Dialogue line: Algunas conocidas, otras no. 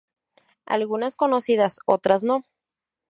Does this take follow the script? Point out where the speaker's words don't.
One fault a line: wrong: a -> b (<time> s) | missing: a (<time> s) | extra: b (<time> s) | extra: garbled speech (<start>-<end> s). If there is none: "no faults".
no faults